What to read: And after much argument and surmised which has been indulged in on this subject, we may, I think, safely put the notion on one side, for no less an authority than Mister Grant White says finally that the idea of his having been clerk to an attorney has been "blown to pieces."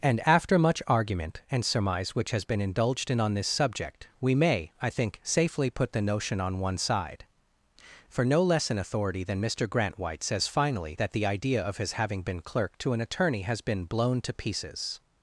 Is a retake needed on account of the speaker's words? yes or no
yes